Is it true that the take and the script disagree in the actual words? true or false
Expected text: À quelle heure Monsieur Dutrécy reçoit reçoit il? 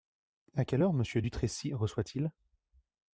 true